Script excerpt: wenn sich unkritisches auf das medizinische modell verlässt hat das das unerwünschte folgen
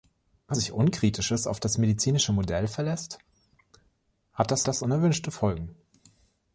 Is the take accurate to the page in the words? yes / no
yes